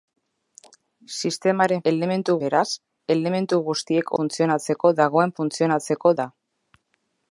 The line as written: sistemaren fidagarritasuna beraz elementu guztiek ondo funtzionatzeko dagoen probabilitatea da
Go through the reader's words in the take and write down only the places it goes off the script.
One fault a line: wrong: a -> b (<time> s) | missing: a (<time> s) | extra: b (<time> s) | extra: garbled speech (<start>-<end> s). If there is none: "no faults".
wrong: fidagarritasuna -> elementu (1.9 s)
missing: ondo (4.1 s)
wrong: probabilitatea -> funtzionatzeko (5.4 s)